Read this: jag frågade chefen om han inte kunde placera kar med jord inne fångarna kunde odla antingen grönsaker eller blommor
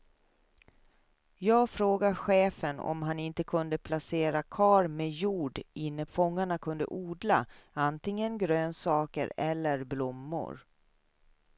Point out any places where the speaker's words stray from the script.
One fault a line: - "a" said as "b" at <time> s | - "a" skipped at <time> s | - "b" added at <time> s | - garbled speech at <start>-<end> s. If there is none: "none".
none